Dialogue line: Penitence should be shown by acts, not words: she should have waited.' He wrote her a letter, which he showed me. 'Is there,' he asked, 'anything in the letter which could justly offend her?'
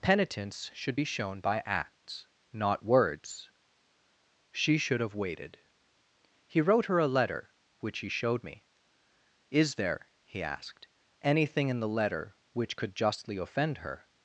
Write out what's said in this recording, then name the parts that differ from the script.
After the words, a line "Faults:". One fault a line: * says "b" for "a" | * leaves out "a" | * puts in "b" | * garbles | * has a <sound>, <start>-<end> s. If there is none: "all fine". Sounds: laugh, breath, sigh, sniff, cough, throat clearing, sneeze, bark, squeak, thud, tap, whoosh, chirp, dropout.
Penitence should be shown by acts, not words: she should have waited.' He wrote her a letter, which he showed me. 'Is there,' he asked, 'anything in the letter which could justly offend her?'
Faults:
all fine